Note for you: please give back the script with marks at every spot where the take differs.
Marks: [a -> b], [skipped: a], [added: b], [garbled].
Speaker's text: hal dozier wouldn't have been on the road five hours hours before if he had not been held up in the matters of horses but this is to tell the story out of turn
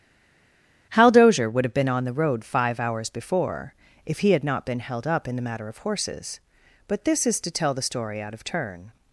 hal dozier [wouldn't -> would] have been on the road five hours [skipped: hours] before if he had not been held up in the [matters -> matter] of horses but this is to tell the story out of turn